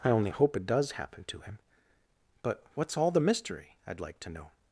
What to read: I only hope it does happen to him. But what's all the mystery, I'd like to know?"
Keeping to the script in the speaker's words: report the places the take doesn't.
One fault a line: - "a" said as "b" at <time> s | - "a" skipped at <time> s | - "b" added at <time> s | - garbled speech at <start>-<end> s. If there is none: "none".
none